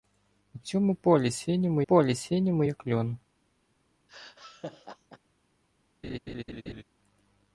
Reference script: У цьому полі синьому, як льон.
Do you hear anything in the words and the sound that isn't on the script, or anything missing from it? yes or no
yes